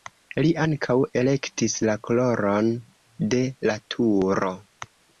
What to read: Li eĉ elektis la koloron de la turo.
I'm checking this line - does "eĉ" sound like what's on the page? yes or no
no